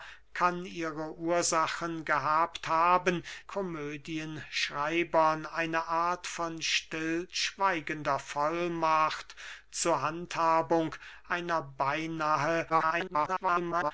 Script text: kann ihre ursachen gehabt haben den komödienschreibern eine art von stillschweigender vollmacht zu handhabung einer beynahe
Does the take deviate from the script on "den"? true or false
true